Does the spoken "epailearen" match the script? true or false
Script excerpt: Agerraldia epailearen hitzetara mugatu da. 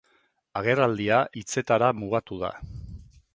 false